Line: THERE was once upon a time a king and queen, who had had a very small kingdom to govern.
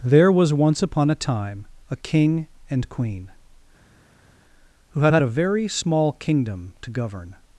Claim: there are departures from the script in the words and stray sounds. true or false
false